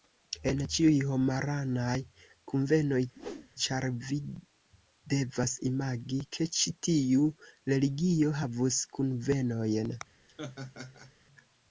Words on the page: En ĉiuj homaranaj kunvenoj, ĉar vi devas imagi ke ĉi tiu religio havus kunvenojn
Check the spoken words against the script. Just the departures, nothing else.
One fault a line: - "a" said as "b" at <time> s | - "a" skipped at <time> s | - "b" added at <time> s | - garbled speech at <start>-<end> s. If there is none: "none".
none